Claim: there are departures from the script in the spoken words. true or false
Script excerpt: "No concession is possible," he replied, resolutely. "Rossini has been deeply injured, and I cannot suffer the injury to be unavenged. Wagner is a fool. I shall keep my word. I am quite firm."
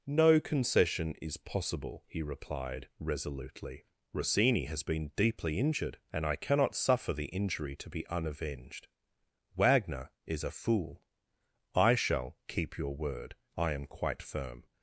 true